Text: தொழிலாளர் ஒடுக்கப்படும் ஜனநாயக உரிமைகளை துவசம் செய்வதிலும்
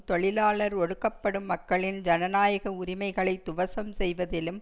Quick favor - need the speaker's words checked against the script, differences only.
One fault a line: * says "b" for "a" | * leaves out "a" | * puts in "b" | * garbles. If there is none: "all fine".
* puts in "மக்களின்"